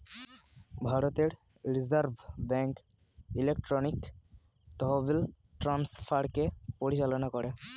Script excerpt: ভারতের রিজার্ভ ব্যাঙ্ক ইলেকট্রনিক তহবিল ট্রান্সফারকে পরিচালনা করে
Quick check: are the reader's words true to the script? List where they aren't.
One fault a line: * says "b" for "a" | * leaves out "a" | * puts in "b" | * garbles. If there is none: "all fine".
all fine